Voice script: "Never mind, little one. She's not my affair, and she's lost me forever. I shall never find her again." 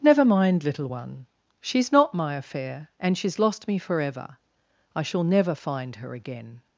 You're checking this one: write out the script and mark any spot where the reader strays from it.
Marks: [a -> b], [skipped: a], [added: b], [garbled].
"Never mind, little one. She's not my affair, and she's lost me forever. I shall never find her again."